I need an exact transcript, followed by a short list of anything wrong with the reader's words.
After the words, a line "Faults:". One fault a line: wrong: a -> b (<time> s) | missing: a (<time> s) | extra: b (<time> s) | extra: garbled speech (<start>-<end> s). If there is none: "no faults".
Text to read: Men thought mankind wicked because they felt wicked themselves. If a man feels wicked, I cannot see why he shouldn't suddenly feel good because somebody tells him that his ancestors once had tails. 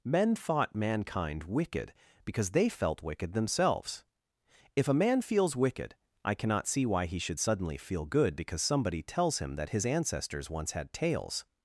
Men thought mankind wicked because they felt wicked themselves. If a man feels wicked, I cannot see why he should suddenly feel good because somebody tells him that his ancestors once had tails.
Faults:
wrong: shouldn't -> should (7.2 s)